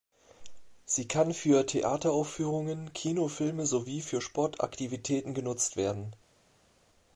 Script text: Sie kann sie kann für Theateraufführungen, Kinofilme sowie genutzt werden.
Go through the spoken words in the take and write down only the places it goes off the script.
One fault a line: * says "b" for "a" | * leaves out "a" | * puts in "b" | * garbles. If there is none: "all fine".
* leaves out "sie kann"
* puts in "für Sportaktivitäten"